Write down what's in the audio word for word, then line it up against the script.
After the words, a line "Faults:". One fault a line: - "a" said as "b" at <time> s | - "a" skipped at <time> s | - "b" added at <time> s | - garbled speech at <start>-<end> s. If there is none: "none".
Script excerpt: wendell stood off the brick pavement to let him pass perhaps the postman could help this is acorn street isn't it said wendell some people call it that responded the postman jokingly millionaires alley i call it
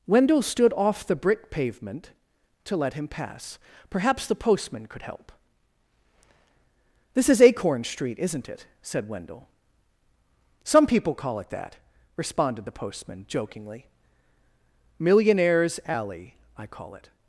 wendell stood off the brick pavement to let him pass perhaps the postman could help this is acorn street isn't it said wendell some people call it that responded the postman jokingly millionaires alley i call it
Faults:
none